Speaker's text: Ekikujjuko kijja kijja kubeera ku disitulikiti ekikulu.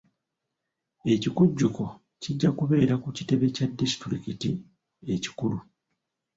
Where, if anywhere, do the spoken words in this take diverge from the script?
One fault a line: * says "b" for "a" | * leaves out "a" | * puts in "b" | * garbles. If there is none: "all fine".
* leaves out "kijja"
* puts in "kitebe kya"